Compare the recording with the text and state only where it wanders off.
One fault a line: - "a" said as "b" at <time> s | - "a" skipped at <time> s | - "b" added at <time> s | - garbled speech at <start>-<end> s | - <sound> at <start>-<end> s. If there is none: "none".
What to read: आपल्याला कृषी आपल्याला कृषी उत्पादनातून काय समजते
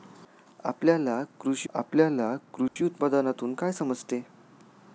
- dropout at 2.7-2.8 s